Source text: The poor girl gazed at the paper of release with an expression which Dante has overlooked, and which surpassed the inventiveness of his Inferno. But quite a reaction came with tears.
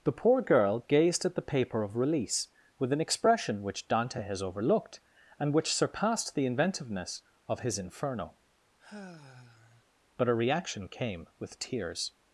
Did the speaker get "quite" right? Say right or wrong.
wrong